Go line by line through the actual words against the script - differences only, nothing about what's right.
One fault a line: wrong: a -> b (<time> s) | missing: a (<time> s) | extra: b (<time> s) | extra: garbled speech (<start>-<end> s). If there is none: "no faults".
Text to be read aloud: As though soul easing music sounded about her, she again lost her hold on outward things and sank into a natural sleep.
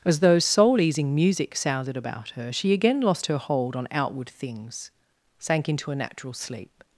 missing: and (4.9 s)